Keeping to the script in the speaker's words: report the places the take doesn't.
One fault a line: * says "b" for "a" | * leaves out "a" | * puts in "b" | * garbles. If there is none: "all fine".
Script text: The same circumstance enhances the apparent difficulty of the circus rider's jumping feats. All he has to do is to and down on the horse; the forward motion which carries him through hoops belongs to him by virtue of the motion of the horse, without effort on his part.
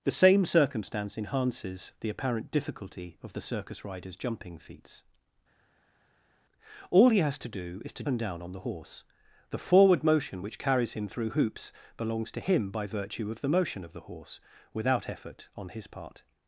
all fine